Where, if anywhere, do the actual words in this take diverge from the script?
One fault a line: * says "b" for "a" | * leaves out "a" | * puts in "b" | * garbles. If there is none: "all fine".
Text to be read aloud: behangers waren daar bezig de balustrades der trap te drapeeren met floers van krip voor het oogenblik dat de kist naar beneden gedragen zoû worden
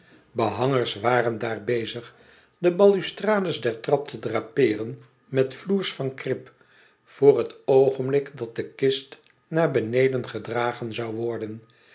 all fine